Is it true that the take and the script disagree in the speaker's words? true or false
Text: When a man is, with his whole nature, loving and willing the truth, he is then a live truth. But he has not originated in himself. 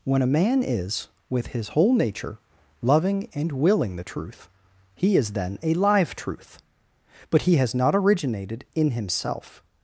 false